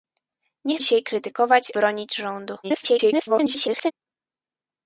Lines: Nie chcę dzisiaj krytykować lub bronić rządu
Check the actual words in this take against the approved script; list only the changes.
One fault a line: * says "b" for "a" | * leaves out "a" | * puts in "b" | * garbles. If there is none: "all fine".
* leaves out "chcę"
* leaves out "lub"
* garbles